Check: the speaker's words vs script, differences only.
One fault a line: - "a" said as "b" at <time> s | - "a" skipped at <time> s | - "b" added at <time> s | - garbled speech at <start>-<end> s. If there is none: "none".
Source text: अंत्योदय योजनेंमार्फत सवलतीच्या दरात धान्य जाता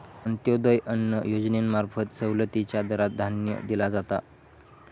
- "अन्न" added at 0.8 s
- "दिला" added at 3.6 s